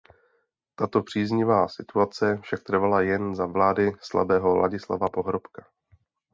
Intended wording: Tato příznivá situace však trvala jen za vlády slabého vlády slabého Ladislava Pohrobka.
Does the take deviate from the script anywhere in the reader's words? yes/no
yes